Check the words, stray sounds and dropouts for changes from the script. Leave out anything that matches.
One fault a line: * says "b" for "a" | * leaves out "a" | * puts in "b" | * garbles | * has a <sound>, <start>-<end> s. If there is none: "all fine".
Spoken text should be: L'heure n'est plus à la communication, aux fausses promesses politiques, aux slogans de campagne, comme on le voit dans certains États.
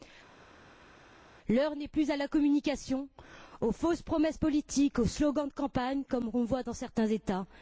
all fine